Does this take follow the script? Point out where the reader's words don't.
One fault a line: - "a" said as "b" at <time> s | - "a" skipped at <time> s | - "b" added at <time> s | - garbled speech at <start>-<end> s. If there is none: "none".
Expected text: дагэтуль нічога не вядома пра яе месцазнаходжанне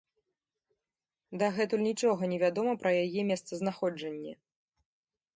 none